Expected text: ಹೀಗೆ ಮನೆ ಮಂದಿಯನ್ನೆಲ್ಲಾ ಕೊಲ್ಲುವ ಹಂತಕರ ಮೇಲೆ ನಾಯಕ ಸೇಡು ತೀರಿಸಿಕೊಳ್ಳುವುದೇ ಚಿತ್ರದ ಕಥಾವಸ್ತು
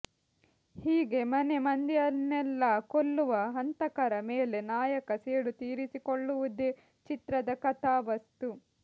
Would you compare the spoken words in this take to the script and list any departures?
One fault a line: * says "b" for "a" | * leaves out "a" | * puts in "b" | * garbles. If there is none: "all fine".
all fine